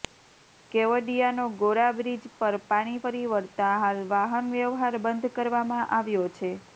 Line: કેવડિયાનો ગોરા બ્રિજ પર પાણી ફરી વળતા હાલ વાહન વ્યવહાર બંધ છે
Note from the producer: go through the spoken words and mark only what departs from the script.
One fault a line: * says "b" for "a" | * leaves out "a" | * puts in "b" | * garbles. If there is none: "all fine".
* puts in "કરવામાં આવ્યો"